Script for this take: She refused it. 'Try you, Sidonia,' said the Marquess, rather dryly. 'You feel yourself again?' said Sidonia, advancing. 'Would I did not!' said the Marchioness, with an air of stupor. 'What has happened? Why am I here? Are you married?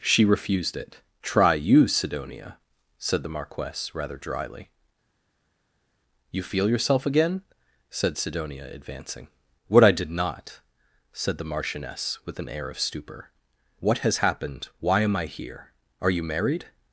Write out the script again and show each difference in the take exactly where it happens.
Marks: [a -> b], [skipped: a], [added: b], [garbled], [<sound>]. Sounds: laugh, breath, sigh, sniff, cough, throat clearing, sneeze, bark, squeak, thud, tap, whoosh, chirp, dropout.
She refused it. 'Try you, Sidonia,' said the Marquess, rather dryly. 'You feel yourself again?' said Sidonia, advancing. ['Would -> What] I did not!' said the Marchioness, with an air of stupor. 'What has happened? Why am I here? Are you married?